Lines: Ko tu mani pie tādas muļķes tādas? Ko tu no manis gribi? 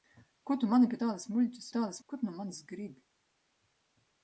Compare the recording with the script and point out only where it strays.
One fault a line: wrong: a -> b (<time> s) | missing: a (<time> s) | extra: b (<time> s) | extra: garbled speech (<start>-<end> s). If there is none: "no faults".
no faults